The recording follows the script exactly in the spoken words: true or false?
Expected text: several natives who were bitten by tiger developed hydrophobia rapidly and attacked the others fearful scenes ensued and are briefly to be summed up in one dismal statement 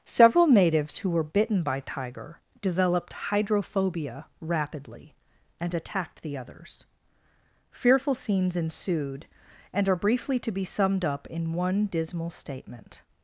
true